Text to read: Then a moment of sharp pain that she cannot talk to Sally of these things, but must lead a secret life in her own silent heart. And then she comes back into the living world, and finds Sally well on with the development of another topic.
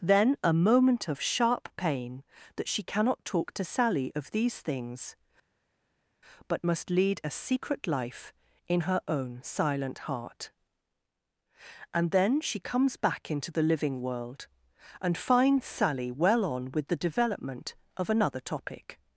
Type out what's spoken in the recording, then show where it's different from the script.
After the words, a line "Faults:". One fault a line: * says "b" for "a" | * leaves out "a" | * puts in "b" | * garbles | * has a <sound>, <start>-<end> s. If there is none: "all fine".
Then a moment of sharp pain that she cannot talk to Sally of these things, but must lead a secret life in her own silent heart. And then she comes back into the living world, and finds Sally well on with the development of another topic.
Faults:
all fine